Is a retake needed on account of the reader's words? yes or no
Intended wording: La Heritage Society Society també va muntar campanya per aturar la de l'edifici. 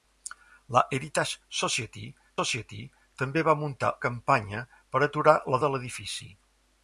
no